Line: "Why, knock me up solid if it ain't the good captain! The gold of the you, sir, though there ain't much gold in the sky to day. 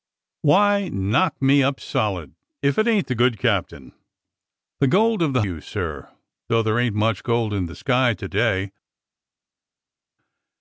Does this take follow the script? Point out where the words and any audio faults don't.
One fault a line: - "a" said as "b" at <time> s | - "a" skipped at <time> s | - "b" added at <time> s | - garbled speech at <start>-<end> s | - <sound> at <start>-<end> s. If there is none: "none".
none